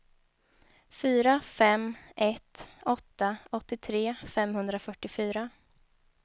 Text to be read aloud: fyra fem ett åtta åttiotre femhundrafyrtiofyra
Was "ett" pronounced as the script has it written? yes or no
yes